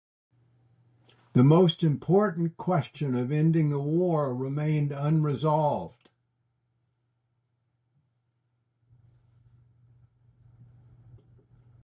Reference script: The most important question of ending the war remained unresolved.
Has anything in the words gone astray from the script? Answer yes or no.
no